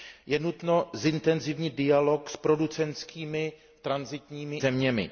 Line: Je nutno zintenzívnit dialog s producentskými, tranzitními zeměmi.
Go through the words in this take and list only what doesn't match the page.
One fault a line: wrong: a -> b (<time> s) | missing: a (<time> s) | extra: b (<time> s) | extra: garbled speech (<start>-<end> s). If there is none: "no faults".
no faults